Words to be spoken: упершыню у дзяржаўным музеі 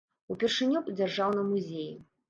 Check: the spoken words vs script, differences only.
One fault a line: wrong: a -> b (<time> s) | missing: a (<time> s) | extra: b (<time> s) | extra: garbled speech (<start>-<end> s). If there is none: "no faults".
no faults